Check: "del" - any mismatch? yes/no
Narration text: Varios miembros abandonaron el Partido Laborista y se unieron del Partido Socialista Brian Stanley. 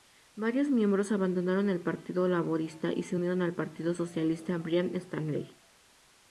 yes